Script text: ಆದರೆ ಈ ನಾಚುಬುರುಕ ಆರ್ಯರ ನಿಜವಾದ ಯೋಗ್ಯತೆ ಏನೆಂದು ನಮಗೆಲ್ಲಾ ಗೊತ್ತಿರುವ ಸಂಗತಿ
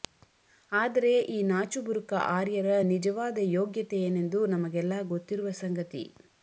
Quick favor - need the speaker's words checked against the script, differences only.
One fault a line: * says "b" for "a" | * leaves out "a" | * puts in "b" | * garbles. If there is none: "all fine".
all fine